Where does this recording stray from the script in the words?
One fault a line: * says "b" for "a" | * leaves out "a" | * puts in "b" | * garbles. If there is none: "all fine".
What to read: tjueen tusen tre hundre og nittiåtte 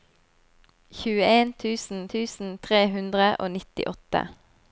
* puts in "tusen"